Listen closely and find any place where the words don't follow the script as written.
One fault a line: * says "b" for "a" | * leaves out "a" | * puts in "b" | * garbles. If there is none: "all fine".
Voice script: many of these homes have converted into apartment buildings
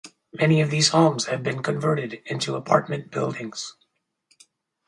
* puts in "been"